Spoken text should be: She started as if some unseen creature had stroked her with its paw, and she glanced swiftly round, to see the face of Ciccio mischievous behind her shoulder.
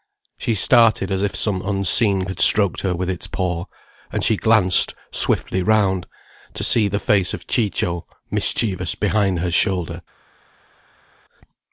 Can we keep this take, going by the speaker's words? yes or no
no